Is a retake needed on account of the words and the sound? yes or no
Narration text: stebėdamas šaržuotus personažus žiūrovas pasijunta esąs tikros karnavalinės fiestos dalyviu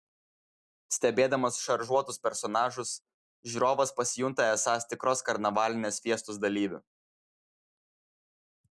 no